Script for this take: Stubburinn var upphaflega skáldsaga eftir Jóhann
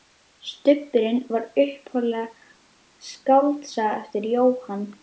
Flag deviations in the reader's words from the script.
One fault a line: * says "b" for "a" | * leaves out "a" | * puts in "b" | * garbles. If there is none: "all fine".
all fine